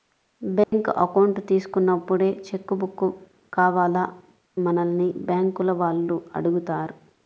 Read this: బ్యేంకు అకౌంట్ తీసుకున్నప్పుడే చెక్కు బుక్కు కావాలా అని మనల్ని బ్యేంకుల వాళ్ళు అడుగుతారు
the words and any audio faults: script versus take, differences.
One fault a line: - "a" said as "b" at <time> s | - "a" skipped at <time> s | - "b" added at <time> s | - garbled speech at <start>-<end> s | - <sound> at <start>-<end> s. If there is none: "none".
- dropout at 0.6-0.7 s
- "అని" skipped at 4.0 s